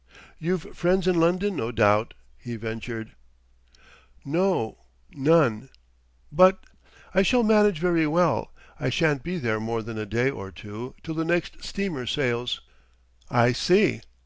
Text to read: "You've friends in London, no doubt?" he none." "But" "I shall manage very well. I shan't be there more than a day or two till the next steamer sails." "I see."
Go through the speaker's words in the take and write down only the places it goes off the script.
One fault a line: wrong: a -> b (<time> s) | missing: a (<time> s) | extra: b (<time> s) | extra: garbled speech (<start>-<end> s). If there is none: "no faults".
extra: ventured No (2.5 s)